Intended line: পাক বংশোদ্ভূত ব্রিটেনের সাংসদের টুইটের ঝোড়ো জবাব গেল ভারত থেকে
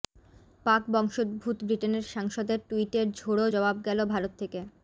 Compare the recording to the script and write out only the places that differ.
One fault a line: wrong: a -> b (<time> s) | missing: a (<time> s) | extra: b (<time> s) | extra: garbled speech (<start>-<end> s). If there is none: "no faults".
no faults